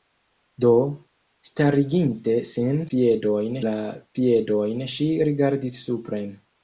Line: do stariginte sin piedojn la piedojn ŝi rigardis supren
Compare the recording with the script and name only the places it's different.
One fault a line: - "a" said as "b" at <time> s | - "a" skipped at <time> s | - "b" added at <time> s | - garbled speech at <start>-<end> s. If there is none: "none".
none